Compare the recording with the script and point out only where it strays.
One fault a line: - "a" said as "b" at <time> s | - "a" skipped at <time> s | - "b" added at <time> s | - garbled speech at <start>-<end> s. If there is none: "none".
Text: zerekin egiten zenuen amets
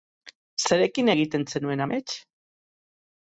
none